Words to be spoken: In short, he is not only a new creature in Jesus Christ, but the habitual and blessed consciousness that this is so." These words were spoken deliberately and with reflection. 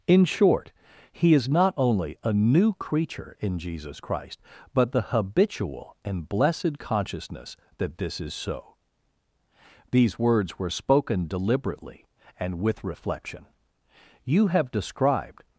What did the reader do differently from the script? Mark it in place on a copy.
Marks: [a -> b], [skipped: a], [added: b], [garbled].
In short, he is not only a new creature in Jesus Christ, but the habitual and blessed consciousness that this is so." These words were spoken deliberately and with reflection. [added: You have described]